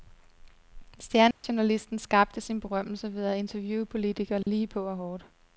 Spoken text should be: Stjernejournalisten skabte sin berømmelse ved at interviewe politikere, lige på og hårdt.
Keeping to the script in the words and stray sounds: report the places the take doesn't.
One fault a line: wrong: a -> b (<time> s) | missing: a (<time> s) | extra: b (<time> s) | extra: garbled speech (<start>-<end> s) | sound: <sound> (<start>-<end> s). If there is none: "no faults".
sound: dropout (1.3-1.4 s)
sound: dropout (4.4-4.5 s)